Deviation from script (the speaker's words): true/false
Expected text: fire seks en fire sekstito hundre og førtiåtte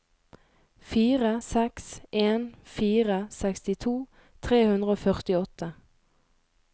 true